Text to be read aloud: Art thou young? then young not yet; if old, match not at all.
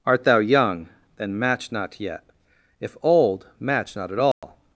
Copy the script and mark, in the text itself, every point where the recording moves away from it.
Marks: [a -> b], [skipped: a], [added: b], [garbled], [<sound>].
Art thou young? then [young -> match] not yet; if old, match not at all. [dropout]